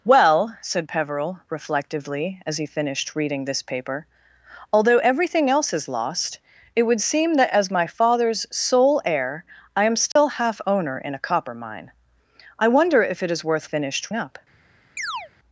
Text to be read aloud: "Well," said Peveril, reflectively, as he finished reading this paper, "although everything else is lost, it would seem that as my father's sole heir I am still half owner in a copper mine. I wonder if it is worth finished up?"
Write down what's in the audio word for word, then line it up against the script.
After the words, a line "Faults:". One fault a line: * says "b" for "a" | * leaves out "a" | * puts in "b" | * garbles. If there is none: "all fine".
"Well," said Peveril, reflectively, as he finished reading this paper, "although everything else is lost, it would seem that as my father's sole heir I am still half owner in a copper mine. I wonder if it is worth finished up?"
Faults:
all fine